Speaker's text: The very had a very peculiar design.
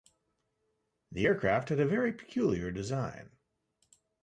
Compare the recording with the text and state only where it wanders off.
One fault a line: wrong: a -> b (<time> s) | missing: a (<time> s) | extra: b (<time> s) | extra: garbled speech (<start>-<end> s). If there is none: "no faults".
wrong: very -> aircraft (1.2 s)